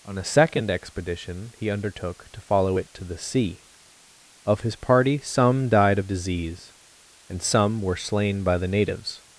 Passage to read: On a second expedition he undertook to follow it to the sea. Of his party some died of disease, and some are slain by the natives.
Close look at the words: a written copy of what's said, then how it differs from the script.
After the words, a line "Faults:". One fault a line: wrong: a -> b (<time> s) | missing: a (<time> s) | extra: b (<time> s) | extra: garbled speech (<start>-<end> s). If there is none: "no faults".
On a second expedition he undertook to follow it to the sea. Of his party some died of disease, and some were slain by the natives.
Faults:
wrong: are -> were (7.8 s)